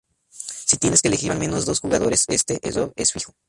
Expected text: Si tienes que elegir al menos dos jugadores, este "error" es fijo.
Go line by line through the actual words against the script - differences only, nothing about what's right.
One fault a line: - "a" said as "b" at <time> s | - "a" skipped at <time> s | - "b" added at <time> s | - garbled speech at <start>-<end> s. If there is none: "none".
none